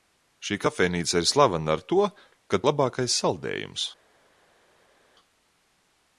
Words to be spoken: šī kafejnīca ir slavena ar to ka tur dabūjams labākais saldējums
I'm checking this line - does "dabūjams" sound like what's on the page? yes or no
no